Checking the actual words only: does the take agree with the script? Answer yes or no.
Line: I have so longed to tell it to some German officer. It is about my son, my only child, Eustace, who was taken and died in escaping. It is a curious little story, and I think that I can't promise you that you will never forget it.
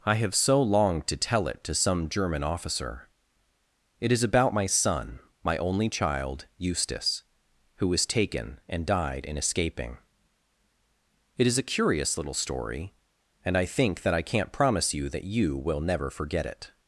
yes